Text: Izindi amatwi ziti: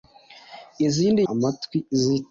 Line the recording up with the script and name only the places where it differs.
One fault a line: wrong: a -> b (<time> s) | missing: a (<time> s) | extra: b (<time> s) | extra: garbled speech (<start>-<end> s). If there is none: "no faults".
no faults